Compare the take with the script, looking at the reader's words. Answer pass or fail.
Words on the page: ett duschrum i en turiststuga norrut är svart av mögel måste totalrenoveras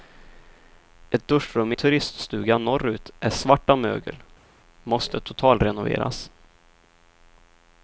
fail